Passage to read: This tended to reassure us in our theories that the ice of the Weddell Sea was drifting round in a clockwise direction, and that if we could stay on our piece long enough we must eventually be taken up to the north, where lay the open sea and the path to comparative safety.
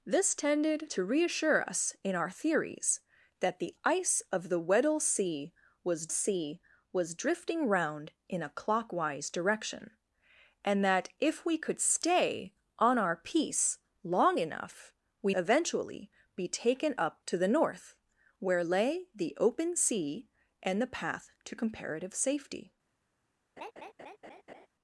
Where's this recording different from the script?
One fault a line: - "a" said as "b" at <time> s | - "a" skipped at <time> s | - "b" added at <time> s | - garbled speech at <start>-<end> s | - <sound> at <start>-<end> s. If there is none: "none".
- "Sea was" added at 6.1 s
- "must" skipped at 15.3 s
- laugh at 23.6-24.7 s